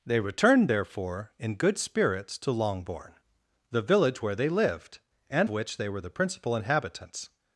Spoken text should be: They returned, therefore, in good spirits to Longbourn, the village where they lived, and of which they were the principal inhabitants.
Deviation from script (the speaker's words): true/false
true